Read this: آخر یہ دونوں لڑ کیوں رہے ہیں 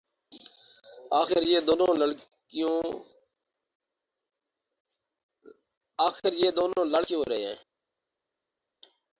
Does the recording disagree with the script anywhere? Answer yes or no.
no